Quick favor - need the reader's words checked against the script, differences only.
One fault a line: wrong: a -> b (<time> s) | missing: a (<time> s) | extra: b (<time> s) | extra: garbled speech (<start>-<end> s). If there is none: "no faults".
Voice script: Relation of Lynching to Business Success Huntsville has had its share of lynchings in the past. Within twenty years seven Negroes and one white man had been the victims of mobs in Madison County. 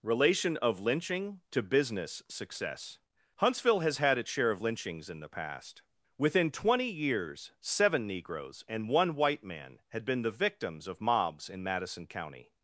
no faults